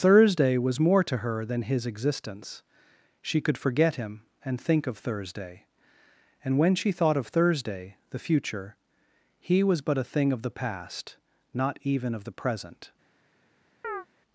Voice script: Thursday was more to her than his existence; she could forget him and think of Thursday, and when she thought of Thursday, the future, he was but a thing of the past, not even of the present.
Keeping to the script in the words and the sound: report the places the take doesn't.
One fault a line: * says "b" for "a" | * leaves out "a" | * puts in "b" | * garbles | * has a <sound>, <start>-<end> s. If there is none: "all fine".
* has a chirp, 13.8-14.1 s